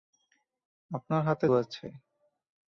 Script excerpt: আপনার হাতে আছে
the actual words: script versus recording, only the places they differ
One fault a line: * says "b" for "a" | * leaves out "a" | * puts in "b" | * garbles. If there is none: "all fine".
all fine